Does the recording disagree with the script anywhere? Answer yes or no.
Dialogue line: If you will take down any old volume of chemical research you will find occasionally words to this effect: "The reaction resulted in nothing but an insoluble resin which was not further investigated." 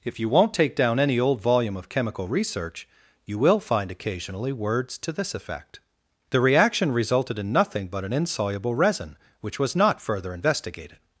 yes